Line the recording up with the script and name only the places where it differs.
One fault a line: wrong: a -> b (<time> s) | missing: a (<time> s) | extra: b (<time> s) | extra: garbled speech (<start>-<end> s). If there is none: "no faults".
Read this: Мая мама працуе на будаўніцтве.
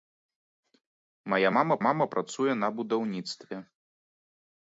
extra: мама (1.9 s)